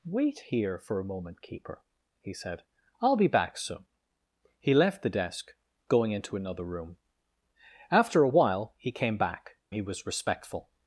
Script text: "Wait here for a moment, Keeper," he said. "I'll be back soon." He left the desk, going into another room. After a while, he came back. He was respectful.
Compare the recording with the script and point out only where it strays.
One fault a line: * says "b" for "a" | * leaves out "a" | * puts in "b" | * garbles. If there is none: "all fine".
all fine